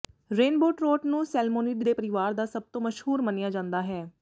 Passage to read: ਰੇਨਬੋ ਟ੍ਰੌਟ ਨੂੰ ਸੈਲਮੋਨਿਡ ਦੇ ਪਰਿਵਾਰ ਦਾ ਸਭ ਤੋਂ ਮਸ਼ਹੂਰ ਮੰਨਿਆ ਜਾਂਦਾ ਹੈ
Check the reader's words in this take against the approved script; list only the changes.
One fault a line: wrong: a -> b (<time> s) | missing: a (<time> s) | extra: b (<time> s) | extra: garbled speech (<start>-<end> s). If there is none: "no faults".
no faults